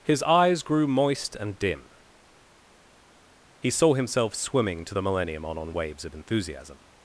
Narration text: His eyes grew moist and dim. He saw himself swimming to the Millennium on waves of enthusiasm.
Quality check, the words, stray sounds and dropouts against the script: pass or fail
fail